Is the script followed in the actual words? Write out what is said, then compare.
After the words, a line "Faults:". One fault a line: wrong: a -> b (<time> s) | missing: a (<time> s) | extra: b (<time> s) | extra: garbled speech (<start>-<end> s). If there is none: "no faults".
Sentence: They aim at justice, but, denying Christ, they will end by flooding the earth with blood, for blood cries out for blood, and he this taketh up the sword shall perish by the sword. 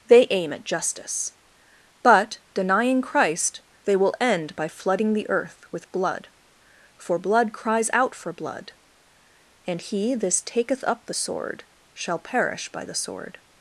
They aim at justice, but, denying Christ, they will end by flooding the earth with blood, for blood cries out for blood, and he this taketh up the sword shall perish by the sword.
Faults:
no faults